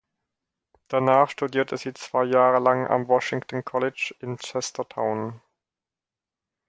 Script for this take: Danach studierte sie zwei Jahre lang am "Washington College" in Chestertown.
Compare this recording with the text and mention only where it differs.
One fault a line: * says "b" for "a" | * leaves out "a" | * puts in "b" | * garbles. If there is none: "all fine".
all fine